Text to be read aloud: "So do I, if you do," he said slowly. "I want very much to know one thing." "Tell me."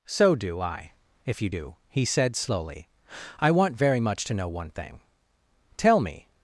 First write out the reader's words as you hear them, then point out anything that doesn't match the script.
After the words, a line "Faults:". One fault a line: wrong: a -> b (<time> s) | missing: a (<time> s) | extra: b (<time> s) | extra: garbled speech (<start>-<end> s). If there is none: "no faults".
"So do I, if you do," he said slowly. "I want very much to know one thing." "Tell me."
Faults:
no faults